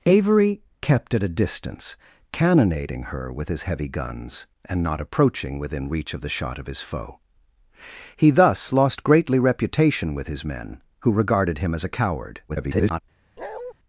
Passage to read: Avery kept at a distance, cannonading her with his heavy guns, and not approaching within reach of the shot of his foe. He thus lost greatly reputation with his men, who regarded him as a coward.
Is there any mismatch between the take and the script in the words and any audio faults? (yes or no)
yes